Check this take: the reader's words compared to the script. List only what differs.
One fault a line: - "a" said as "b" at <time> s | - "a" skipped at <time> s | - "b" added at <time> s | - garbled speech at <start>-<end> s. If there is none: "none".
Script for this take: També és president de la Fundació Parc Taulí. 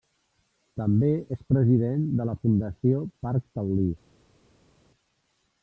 none